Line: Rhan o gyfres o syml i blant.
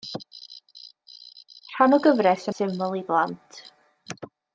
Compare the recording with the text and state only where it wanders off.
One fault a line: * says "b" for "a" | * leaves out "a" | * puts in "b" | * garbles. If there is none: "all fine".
all fine